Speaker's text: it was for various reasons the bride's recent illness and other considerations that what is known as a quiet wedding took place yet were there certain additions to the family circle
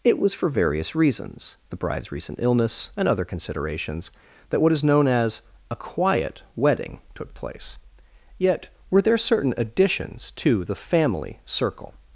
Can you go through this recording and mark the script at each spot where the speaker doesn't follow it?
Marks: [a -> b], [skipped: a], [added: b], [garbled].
it was for various reasons the bride's recent illness and other considerations that what is known as a quiet wedding took place yet were there certain additions to the family circle